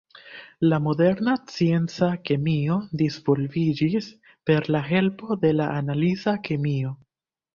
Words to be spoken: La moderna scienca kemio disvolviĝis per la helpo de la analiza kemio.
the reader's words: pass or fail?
pass